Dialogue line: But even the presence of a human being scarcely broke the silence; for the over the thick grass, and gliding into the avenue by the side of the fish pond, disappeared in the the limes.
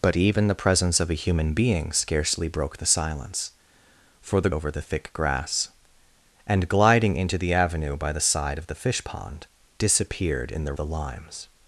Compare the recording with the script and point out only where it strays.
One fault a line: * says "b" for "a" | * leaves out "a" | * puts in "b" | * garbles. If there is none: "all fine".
all fine